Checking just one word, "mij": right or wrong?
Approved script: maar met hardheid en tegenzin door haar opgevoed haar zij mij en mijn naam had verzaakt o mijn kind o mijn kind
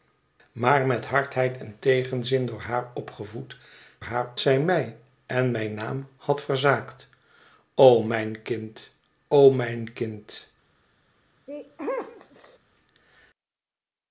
right